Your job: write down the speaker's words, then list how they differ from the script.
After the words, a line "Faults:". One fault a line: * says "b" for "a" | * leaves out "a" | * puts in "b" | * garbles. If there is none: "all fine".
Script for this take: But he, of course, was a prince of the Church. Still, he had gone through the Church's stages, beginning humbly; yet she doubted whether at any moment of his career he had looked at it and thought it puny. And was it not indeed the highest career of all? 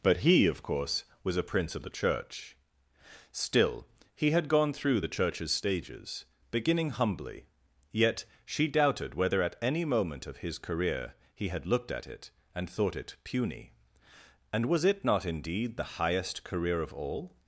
But he, of course, was a prince of the Church. Still, he had gone through the Church's stages, beginning humbly; yet she doubted whether at any moment of his career he had looked at it and thought it puny. And was it not indeed the highest career of all?
Faults:
all fine